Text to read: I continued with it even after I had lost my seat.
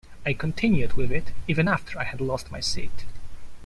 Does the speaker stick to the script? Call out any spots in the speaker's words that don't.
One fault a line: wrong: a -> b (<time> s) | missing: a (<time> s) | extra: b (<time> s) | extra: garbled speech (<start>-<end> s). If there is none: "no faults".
no faults